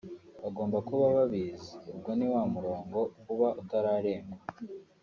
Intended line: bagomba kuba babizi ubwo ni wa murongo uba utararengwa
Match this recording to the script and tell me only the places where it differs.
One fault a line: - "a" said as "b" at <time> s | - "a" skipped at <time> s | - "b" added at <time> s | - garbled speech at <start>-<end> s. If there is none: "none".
none